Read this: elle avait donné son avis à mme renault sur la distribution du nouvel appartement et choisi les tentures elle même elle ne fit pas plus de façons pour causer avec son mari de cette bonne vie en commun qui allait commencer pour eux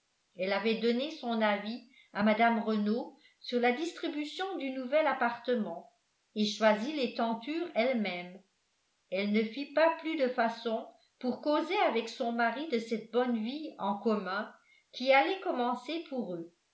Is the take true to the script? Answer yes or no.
yes